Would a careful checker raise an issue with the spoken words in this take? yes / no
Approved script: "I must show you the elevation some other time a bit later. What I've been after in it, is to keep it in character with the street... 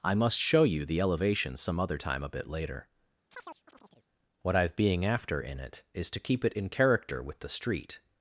yes